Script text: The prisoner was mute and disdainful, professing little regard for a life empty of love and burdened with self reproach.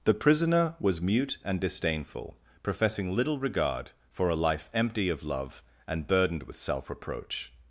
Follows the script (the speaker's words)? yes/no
yes